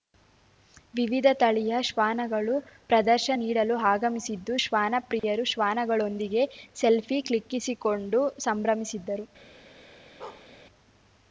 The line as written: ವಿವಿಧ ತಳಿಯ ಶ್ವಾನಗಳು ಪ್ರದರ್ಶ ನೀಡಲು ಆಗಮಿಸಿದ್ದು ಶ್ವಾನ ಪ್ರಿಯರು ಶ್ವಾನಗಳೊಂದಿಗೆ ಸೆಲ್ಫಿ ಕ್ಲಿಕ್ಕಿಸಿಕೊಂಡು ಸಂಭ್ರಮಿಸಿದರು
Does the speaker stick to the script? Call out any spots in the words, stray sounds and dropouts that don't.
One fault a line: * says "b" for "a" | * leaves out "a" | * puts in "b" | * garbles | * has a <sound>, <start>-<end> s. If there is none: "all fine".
* has a dropout, 5.2-5.2 s
* has a bark, 10.2-10.5 s